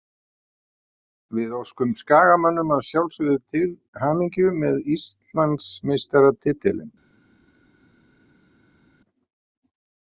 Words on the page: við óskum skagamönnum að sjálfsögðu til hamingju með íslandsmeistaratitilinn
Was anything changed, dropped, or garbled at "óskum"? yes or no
no